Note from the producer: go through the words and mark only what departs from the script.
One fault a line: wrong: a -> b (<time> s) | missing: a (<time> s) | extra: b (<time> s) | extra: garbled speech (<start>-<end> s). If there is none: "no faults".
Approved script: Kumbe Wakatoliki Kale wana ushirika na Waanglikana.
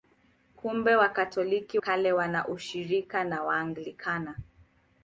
no faults